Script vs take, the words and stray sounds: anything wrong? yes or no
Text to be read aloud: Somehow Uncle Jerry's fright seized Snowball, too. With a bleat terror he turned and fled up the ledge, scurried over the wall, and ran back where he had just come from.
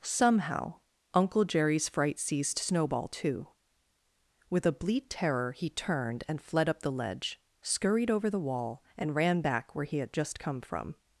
no